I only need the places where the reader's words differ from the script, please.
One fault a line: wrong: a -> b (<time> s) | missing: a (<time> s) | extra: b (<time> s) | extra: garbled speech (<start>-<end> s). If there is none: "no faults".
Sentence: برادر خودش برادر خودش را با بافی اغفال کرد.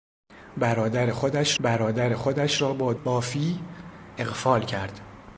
no faults